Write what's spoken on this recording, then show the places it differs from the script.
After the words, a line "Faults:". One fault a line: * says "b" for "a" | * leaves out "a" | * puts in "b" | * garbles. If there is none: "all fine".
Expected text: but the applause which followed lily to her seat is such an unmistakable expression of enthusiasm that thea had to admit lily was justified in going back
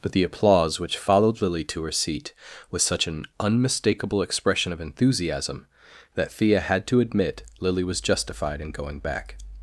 but the applause which followed lily to her seat was such an unmistakable expression of enthusiasm that thea had to admit lily was justified in going back
Faults:
* says "was" for "is"